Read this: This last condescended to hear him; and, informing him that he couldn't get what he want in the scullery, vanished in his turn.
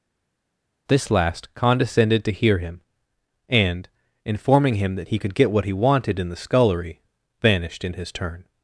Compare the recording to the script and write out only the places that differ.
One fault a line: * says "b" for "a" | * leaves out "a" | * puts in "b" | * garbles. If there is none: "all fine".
* says "could" for "couldn't"
* says "wanted" for "want"